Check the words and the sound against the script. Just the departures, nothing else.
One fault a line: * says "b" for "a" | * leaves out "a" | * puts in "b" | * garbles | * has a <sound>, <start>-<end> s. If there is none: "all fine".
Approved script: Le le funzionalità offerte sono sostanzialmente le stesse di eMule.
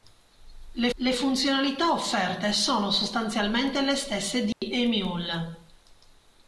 * has a dropout, 4.5-4.6 s